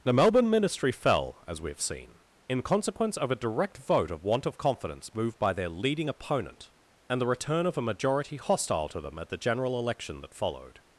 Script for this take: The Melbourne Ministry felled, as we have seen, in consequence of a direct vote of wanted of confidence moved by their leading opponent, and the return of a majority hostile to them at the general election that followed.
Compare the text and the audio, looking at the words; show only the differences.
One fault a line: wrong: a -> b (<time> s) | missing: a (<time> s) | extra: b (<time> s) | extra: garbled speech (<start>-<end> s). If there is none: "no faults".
wrong: felled -> fell (0.9 s)
wrong: wanted -> want (4.2 s)